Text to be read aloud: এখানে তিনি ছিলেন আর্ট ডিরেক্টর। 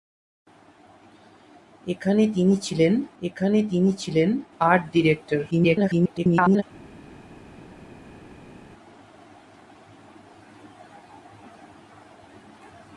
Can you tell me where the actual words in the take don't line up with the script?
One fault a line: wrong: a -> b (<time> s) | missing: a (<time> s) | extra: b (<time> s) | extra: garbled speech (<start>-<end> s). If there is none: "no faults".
extra: এখানে তিনি ছিলেন (3.2 s)
extra: garbled speech (5.5-6.6 s)